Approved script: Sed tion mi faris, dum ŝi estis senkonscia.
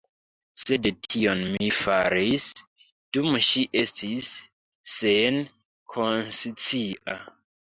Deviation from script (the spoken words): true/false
false